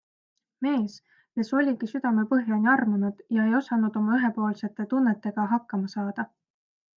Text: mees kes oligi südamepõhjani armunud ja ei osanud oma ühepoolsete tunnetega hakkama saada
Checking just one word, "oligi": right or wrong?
right